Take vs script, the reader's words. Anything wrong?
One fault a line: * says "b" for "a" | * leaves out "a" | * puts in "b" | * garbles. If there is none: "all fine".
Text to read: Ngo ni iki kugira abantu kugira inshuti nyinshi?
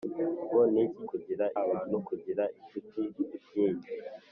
all fine